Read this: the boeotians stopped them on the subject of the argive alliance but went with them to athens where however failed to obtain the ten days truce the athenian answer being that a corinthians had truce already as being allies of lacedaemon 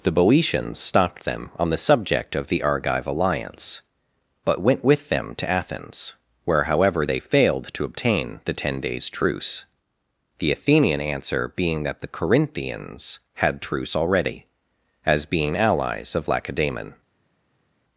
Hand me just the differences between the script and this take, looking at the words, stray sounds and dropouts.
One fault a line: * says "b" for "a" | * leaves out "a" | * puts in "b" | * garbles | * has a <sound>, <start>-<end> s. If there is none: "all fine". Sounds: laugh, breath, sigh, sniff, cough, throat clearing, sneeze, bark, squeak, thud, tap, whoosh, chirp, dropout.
* puts in "they"
* says "the" for "a"